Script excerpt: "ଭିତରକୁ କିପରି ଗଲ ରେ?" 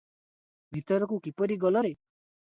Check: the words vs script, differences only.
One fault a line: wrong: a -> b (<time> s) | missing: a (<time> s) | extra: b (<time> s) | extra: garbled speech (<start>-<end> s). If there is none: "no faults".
no faults